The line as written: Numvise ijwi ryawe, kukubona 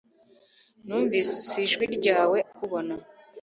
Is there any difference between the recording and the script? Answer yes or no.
no